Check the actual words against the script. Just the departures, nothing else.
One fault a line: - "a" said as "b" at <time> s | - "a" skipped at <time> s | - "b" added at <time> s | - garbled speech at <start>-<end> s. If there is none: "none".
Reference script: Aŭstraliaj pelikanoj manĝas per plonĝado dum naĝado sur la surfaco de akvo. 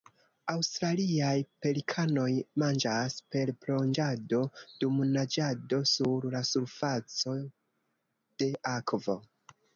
none